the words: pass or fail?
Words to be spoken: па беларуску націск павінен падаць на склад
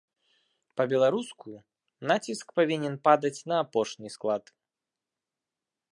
fail